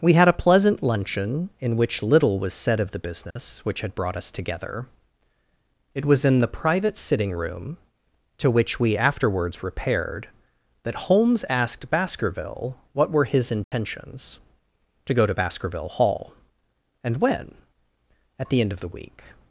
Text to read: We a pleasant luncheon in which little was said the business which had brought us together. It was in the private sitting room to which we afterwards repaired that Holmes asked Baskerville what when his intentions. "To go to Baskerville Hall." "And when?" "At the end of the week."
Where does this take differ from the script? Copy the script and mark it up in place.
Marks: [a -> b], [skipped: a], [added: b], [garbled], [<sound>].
We [added: had] a pleasant luncheon in which little was said [added: of] the business [dropout] which had brought us together. It was in the private sitting room to which we afterwards repaired that Holmes asked Baskerville what [when -> were] his intentions. [dropout] "To go to Baskerville Hall." "And when?" "At the end of the week."